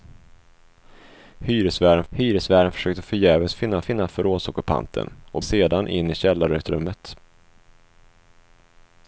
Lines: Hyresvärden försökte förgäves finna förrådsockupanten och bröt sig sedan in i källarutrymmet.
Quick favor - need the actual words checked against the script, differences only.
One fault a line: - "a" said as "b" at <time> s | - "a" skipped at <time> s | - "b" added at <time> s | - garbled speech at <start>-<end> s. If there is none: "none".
- "hyresvärden" added at 2.1 s
- "finna" added at 3.8 s
- "bröt sig" skipped at 5.4 s